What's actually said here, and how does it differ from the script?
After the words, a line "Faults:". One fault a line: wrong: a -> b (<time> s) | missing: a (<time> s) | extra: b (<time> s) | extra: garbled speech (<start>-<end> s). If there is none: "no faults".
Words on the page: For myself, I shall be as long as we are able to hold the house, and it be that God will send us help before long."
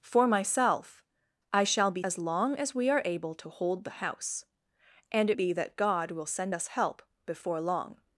For myself, I shall be as long as we are able to hold the house, and it be that God will send us help before long."
Faults:
no faults